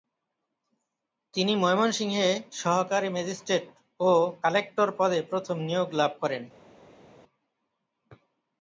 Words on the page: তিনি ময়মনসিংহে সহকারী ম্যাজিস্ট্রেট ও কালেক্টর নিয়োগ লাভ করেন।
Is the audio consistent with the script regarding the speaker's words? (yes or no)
no